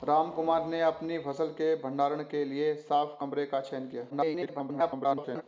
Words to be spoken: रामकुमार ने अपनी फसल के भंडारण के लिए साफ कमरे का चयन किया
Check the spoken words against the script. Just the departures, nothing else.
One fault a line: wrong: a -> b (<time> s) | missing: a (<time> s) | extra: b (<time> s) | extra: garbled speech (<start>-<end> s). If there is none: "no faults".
extra: garbled speech (4.1-5.4 s)